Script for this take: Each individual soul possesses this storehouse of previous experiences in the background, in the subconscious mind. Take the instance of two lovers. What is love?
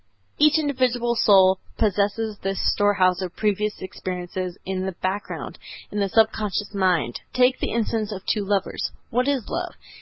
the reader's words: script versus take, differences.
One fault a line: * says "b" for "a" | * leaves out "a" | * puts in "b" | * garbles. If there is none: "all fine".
all fine